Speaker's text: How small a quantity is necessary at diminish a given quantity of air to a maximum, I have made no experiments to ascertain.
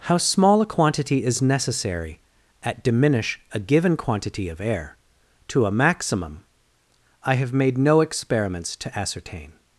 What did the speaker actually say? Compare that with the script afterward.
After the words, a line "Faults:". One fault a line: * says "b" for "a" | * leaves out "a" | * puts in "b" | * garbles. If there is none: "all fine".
How small a quantity is necessary at diminish a given quantity of air to a maximum, I have made no experiments to ascertain.
Faults:
all fine